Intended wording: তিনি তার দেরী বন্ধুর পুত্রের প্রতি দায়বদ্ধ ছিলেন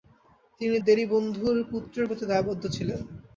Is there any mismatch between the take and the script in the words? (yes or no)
yes